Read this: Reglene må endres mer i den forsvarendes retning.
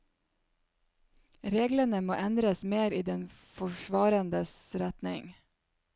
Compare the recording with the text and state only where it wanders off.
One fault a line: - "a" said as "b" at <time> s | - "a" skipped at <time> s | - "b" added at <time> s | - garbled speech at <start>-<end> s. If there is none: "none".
none